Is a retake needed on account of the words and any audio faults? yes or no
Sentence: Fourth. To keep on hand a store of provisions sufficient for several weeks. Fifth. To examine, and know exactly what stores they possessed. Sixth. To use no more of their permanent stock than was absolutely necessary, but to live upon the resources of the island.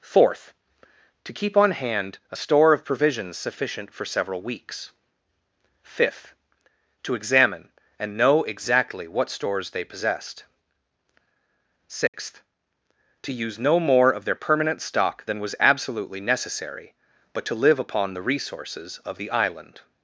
yes